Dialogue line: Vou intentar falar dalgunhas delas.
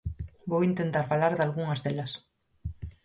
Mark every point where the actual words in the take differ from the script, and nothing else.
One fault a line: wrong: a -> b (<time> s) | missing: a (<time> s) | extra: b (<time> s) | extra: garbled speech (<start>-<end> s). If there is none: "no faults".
no faults